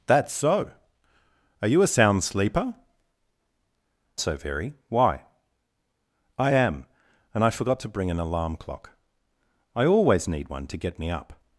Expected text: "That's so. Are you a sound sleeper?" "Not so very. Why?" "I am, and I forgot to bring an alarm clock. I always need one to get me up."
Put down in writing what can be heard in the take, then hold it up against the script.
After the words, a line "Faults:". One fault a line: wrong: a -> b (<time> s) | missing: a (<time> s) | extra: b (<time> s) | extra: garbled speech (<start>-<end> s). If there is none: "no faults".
"That's so. Are you a sound sleeper?" "So very. Why?" "I am, and I forgot to bring an alarm clock. I always need one to get me up."
Faults:
missing: Not (2.8 s)